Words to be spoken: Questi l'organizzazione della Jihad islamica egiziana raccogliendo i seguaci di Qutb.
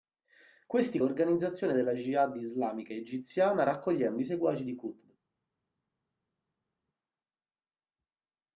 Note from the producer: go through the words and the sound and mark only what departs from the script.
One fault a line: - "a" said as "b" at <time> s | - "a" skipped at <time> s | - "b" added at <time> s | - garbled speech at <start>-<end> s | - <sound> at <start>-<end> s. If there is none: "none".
none